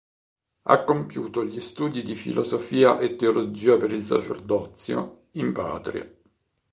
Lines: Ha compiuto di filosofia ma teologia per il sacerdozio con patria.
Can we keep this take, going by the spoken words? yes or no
no